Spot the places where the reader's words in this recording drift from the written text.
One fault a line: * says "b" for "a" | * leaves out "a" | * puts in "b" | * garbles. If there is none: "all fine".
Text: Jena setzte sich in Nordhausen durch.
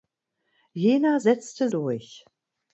* leaves out "sich in Nordhausen"